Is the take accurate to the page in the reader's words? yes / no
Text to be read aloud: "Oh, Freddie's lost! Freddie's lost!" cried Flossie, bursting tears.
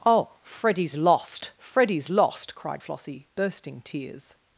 yes